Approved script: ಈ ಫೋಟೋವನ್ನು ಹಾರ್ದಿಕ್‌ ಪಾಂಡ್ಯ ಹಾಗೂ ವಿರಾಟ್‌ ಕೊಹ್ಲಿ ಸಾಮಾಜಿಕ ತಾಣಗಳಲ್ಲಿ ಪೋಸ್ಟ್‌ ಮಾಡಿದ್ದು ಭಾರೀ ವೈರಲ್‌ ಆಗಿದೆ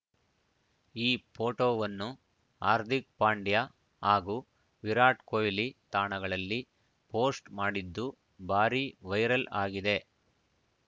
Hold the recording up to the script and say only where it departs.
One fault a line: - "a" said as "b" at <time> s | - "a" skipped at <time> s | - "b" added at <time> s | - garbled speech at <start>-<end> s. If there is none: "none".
- "ಸಾಮಾಜಿಕ" skipped at 5.7 s